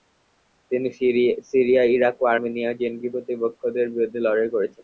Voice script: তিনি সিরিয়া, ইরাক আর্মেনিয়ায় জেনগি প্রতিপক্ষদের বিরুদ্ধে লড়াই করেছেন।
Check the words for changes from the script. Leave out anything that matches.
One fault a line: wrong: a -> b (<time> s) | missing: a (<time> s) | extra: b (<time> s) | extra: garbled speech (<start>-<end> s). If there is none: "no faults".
extra: ও (2.2 s)